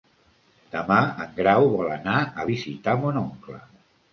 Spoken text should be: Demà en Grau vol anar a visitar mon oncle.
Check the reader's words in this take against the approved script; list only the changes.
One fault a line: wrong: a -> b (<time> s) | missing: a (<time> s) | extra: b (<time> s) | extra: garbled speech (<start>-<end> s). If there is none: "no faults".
no faults